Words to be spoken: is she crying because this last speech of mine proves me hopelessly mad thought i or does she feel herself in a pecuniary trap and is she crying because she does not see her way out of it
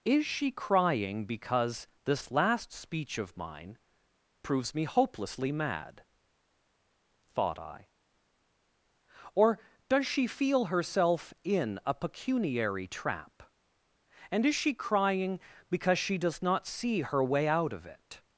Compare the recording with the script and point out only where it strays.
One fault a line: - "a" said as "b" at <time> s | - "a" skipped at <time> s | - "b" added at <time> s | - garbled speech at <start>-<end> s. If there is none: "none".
none